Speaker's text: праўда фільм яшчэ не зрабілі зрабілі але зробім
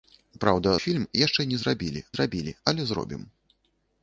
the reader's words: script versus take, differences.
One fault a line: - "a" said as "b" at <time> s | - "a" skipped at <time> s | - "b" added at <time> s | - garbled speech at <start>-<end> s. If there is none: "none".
none